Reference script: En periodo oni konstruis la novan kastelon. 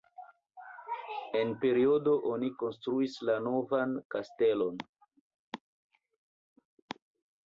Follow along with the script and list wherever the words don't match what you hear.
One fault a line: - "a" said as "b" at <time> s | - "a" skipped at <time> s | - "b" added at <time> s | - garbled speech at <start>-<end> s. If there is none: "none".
none